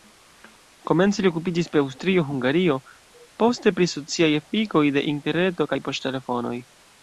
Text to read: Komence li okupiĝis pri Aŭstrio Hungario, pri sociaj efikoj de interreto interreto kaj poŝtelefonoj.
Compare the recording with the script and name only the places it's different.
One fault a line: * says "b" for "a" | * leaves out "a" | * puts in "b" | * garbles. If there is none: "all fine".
* puts in "poste"
* leaves out "interreto"